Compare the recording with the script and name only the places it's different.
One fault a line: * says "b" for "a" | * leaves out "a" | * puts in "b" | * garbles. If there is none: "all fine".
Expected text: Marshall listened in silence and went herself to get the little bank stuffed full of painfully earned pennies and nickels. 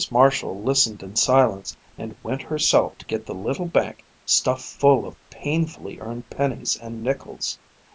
all fine